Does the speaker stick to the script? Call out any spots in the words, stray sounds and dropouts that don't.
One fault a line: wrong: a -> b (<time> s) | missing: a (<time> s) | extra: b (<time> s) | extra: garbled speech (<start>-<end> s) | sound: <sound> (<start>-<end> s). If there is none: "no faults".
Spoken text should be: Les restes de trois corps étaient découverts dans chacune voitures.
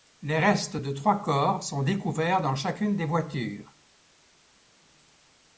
wrong: étaient -> sont (1.6 s)
extra: des (3.0 s)